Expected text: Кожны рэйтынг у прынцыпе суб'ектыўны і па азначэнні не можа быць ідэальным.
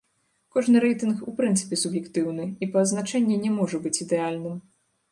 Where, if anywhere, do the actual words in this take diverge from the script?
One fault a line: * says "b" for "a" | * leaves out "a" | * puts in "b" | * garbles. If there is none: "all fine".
all fine